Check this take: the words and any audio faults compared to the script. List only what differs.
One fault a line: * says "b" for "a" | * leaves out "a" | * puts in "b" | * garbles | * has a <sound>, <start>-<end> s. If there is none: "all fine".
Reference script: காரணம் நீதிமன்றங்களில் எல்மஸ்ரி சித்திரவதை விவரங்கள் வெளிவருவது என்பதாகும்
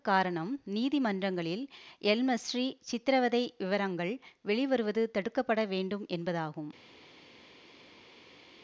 * puts in "தடுக்க பட வேண்டும்"